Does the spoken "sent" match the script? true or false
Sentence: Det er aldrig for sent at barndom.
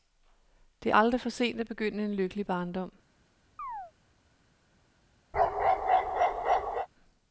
true